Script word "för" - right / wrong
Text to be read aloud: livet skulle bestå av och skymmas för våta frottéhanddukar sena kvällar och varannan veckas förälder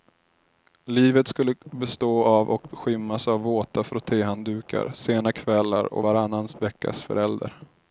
wrong